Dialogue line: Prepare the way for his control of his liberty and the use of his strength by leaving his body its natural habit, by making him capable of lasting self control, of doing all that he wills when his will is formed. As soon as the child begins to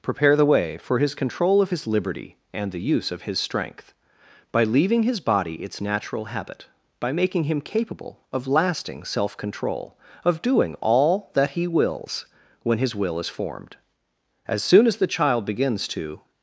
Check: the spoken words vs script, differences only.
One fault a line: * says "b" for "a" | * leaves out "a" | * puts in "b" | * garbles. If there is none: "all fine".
all fine